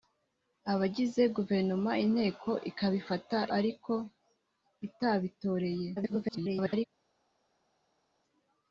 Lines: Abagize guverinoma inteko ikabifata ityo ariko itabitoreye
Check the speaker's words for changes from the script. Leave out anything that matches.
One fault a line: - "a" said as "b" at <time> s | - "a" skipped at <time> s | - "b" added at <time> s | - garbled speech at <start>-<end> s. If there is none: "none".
- "ityo" skipped at 3.4 s
- garbled speech at 6.0-6.9 s